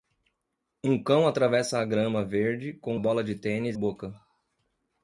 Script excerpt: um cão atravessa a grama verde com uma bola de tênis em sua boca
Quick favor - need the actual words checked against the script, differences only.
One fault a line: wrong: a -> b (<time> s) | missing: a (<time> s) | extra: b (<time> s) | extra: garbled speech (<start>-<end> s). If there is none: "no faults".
missing: uma (3.0 s)
missing: em sua (3.8 s)